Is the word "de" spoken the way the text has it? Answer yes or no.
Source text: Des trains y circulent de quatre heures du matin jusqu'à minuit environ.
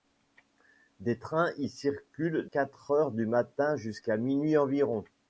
no